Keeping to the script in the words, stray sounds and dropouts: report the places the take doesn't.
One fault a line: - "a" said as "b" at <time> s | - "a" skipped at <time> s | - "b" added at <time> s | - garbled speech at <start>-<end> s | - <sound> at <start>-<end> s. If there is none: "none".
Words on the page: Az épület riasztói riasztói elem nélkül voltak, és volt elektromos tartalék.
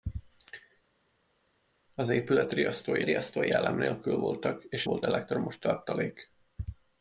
none